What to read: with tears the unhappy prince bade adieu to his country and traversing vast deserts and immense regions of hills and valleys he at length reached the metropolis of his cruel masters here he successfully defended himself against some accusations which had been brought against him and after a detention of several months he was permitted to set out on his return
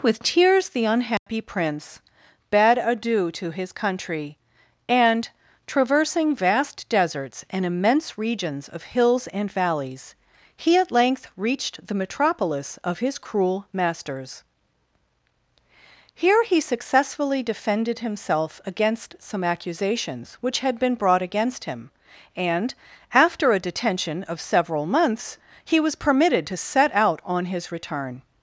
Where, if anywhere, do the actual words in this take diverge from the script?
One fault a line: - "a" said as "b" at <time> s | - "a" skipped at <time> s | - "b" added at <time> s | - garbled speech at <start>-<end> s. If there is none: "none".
none